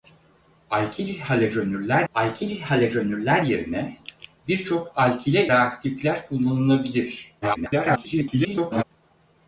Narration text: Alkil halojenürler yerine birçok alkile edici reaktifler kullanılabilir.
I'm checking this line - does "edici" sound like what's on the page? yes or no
no